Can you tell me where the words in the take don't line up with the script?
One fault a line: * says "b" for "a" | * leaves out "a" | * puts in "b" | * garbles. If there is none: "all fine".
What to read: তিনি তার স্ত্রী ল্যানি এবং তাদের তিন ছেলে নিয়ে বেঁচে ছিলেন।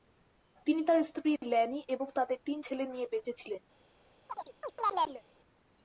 all fine